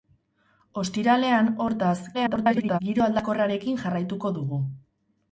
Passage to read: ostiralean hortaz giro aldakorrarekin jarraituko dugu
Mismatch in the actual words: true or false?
true